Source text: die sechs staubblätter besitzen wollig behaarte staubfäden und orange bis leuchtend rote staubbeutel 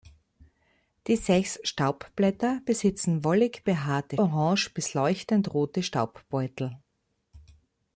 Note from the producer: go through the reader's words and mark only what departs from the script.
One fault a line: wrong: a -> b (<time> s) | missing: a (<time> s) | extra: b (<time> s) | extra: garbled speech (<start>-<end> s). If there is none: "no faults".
missing: staubfäden und (4.2 s)